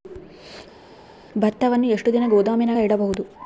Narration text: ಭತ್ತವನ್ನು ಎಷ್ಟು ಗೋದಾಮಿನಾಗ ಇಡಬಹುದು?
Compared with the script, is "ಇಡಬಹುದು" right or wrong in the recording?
right